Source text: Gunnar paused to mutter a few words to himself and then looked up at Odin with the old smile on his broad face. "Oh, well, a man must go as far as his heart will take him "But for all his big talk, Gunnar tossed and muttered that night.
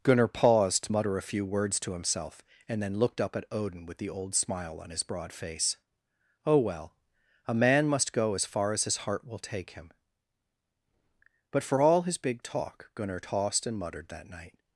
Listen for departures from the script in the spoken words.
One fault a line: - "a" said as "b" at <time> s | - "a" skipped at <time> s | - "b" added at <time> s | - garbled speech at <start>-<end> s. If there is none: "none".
none